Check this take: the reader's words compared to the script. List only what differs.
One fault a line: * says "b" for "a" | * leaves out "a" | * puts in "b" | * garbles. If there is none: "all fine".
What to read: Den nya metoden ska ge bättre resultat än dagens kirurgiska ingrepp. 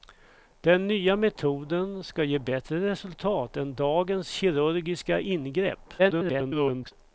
* garbles